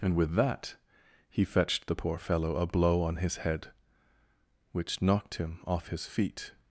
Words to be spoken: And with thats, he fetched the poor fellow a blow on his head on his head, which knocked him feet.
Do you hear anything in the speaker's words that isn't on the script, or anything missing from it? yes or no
yes